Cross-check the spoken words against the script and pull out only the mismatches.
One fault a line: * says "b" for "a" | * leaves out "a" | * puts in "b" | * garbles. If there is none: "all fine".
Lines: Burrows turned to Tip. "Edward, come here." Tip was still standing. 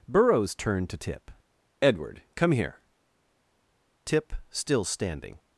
* leaves out "was"